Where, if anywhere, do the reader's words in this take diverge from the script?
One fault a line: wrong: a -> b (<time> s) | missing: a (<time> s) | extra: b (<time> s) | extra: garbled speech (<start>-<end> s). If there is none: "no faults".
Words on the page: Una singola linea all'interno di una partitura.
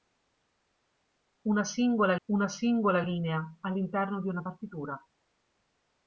extra: una singola (2.3 s)